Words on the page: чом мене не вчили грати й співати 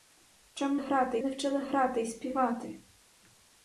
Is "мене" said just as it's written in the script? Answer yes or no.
no